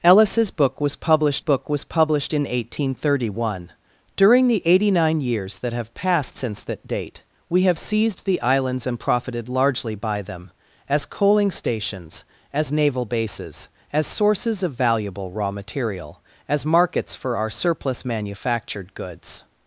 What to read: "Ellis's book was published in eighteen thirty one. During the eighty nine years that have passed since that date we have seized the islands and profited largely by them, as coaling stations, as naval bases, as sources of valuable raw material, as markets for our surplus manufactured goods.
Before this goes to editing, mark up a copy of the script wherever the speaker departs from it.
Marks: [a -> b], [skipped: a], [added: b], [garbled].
"Ellis's book was published [added: book was published] in eighteen thirty one. During the eighty nine years that have passed since that date we have seized the islands and profited largely by them, as coaling stations, as naval bases, as sources of valuable raw material, as markets for our surplus manufactured goods.